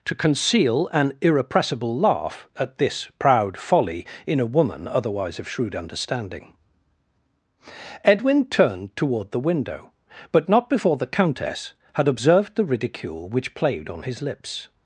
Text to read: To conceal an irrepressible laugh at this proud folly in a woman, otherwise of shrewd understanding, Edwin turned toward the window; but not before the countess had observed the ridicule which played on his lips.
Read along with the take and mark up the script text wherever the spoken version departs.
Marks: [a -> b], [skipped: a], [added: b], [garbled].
To conceal an irrepressible laugh at this proud folly in a woman, otherwise of shrewd understanding, Edwin turned toward the window; but not before the countess had observed the ridicule which played on his lips.